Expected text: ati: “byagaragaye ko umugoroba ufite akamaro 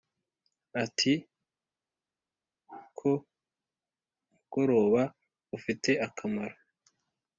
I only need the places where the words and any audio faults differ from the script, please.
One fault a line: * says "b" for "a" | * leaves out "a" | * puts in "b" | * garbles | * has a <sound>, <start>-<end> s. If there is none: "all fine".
* leaves out "byagaragaye"